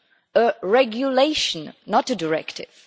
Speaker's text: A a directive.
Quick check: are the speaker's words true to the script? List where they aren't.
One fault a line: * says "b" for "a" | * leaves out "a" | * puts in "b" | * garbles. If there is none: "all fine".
* puts in "regulation not"